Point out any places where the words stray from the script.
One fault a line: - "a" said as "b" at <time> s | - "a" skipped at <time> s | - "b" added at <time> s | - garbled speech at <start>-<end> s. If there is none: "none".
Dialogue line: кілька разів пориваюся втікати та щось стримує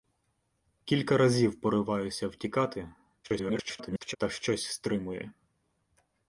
- garbled speech at 3.2-4.2 s